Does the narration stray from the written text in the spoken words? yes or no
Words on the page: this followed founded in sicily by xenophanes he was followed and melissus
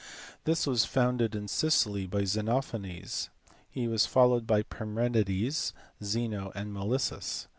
yes